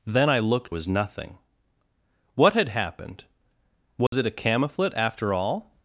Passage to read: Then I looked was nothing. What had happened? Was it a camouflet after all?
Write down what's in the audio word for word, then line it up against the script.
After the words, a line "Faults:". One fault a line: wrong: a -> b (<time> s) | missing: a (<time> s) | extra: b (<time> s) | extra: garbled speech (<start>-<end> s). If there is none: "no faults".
Then I looked was nothing. What had happened? Was it a camouflet after all?
Faults:
no faults